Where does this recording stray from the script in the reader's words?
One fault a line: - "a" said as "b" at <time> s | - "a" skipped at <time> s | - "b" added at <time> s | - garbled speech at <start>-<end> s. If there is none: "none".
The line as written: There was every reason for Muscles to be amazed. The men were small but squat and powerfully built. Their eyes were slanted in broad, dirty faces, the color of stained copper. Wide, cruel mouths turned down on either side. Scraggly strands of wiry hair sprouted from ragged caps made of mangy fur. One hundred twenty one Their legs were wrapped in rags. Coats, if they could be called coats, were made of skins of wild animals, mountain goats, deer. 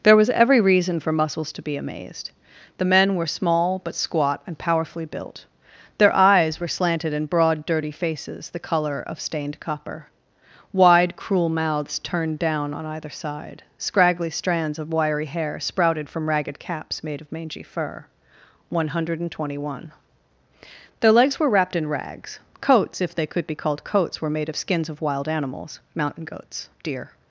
none